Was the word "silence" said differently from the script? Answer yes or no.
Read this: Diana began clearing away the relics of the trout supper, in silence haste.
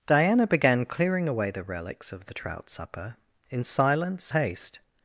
no